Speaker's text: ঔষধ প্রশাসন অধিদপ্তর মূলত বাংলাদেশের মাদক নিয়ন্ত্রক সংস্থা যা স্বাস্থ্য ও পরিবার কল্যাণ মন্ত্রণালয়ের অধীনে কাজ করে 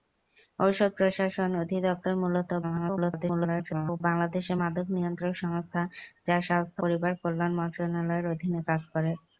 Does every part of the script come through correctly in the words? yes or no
no